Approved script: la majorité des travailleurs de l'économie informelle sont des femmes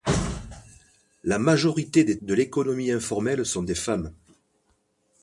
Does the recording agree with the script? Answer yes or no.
no